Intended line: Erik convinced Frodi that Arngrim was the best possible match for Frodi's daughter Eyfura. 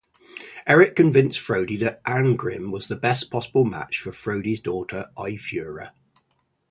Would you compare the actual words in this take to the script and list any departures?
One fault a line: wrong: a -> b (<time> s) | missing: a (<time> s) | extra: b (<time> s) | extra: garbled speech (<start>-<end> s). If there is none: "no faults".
no faults